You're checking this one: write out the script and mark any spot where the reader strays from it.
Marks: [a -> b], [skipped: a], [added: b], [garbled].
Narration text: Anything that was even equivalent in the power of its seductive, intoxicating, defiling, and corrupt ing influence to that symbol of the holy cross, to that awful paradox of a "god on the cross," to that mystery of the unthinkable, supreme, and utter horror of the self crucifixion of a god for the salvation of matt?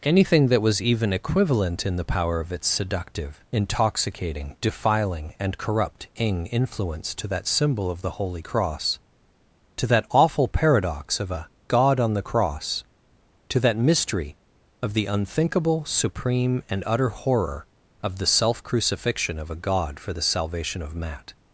Anything that was even equivalent in the power of its seductive, intoxicating, defiling, and corrupt ing influence to that symbol of the holy cross, to that awful paradox of a "god on the cross," to that mystery of the unthinkable, supreme, and utter horror of the self crucifixion of a god for the salvation of matt?